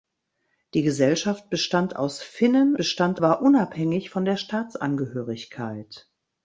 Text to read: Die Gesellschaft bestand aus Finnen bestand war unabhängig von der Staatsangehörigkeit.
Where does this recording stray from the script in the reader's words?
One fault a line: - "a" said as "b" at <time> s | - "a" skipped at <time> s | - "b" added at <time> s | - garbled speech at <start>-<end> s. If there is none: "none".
none